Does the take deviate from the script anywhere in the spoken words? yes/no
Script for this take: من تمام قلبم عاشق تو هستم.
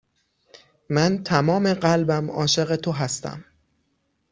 no